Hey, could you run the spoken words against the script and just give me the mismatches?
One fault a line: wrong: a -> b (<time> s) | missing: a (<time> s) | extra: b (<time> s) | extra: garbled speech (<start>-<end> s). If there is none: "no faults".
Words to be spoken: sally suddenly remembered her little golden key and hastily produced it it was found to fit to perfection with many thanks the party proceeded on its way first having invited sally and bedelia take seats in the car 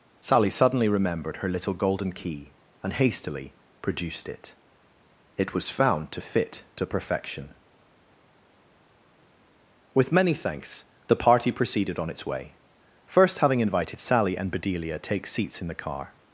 no faults